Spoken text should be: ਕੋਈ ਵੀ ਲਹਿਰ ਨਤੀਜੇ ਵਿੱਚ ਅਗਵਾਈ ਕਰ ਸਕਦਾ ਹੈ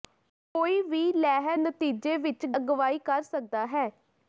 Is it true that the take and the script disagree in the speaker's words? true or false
false